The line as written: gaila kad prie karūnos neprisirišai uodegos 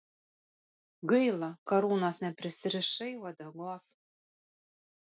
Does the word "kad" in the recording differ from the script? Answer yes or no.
yes